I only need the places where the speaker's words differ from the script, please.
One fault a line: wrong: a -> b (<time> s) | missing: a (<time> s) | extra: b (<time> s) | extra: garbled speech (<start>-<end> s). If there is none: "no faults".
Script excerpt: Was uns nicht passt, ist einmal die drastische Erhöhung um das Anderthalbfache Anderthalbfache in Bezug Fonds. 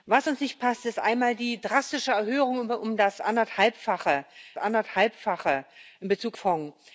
no faults